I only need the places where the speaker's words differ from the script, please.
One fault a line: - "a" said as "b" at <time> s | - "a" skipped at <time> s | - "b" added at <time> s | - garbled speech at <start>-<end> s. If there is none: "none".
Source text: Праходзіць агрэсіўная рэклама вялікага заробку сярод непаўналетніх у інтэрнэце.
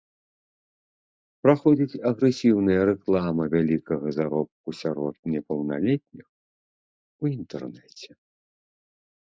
none